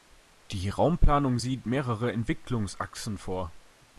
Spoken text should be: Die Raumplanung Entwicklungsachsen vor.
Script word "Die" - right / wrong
right